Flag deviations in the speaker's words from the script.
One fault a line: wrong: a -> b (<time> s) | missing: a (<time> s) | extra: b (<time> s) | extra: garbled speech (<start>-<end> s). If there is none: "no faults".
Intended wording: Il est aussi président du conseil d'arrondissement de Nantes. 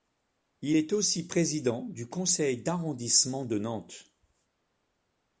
no faults